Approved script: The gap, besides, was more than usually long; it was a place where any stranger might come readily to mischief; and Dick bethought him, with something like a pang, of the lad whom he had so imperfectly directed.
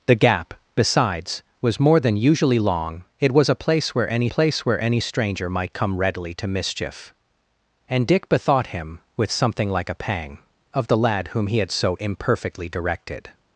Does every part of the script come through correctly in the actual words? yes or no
no